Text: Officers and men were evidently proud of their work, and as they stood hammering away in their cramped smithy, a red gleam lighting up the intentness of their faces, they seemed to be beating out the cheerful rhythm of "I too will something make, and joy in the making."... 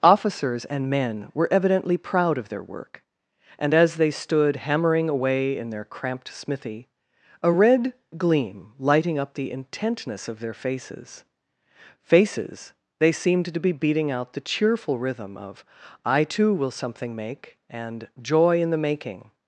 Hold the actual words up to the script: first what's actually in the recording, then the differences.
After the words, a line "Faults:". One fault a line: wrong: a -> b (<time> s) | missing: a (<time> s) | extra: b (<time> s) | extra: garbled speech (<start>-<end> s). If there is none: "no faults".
Officers and men were evidently proud of their work, and as they stood hammering away in their cramped smithy, a red gleam lighting up the intentness of their faces faces, they seemed to be beating out the cheerful rhythm of "I too will something make, and joy in the making."...
Faults:
extra: faces (12.0 s)